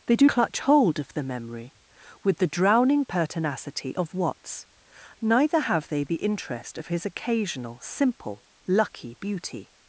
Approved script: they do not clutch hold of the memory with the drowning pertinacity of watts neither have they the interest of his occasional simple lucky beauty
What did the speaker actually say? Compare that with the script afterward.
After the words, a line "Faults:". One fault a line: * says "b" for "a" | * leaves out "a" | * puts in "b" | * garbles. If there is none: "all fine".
they do clutch hold of the memory with the drowning pertinacity of watts neither have they the interest of his occasional simple lucky beauty
Faults:
* leaves out "not"